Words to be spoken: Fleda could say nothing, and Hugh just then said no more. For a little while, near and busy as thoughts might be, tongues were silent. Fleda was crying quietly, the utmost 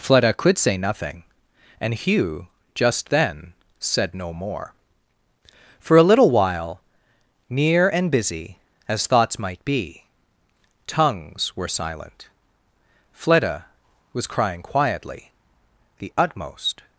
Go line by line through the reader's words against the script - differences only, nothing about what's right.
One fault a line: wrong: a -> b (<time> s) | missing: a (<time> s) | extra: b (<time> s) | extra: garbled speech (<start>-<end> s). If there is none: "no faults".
no faults